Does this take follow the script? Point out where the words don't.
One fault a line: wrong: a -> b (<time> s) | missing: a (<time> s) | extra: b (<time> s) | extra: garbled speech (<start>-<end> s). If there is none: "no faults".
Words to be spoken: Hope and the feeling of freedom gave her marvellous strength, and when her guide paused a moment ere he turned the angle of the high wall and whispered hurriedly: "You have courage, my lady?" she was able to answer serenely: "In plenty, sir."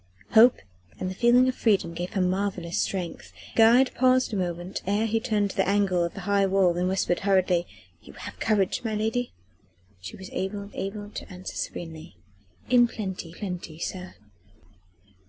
missing: and when her (3.3 s)
extra: able (10.7 s)
extra: plenty (13.3 s)